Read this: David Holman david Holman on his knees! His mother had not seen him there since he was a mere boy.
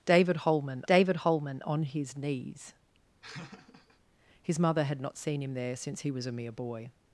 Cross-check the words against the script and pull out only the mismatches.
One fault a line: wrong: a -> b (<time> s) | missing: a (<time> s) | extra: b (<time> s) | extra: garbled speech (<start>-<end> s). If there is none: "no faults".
no faults